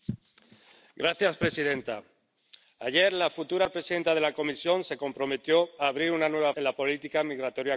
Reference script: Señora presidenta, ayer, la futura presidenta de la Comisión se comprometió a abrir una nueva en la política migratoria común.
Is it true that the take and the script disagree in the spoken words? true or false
false